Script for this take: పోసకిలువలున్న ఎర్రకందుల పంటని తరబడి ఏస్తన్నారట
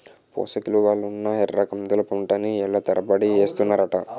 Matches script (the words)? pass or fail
fail